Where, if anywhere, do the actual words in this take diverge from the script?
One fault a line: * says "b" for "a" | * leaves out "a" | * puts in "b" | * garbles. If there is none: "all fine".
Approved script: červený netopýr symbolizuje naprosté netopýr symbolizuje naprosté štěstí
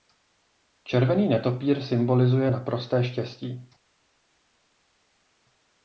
* leaves out "netopýr symbolizuje naprosté"